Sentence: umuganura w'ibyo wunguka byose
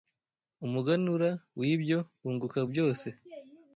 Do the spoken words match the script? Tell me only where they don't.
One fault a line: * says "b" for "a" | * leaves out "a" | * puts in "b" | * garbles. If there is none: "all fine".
all fine